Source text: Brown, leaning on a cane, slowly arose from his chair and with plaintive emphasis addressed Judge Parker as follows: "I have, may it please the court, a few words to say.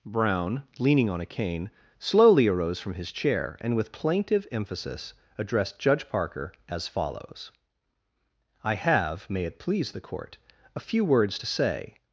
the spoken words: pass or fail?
pass